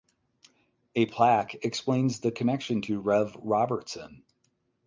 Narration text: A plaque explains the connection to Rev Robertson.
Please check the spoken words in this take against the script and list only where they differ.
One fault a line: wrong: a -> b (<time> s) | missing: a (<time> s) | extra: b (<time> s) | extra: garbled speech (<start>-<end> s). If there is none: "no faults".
no faults